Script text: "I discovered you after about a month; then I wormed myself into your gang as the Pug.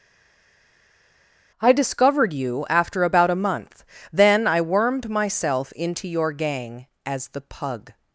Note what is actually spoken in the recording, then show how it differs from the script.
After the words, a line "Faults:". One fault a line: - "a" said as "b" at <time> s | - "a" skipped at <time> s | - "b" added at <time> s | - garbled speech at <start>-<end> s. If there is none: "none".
"I discovered you after about a month; then I wormed myself into your gang as the Pug.
Faults:
none